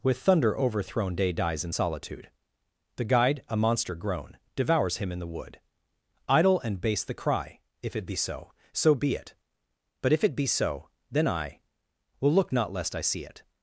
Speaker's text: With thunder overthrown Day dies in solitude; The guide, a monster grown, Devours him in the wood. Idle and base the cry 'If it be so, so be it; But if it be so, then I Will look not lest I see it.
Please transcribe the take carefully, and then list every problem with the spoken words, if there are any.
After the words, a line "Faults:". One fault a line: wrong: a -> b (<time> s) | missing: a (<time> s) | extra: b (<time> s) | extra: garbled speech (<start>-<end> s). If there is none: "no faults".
With thunder overthrown Day dies in solitude; The guide, a monster grown, Devours him in the wood. Idle and base the cry 'If it be so, so be it; But if it be so, then I Will look not lest I see it.
Faults:
no faults